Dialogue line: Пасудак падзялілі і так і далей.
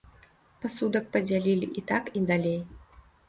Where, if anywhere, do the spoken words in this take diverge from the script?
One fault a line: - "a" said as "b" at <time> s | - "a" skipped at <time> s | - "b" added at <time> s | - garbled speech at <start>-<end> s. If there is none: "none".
none